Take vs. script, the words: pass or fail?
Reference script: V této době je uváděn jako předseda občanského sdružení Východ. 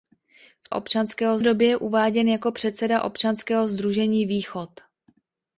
fail